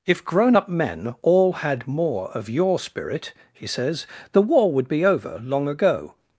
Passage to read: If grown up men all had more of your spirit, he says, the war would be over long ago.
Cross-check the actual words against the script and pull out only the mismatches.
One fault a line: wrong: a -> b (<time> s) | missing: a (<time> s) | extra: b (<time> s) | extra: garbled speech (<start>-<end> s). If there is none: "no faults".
no faults